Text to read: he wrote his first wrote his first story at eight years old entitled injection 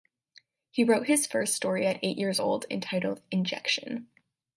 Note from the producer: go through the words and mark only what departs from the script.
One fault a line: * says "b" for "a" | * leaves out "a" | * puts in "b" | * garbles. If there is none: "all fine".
* leaves out "wrote his first"